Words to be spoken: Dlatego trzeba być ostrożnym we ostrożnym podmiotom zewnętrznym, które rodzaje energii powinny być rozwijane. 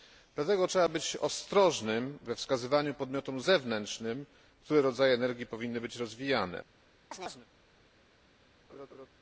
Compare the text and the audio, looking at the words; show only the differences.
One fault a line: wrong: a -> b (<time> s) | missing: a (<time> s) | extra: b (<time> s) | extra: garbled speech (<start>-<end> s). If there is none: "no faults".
wrong: ostrożnym -> wskazywaniu (2.4 s)